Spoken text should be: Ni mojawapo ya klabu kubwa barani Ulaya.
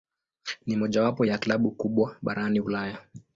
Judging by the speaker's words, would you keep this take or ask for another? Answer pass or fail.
pass